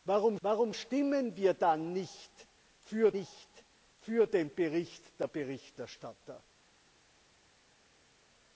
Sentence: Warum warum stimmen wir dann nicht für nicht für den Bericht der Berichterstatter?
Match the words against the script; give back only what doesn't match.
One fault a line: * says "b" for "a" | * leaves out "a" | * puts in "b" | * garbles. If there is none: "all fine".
all fine